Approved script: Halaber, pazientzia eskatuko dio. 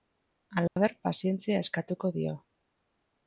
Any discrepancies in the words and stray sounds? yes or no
yes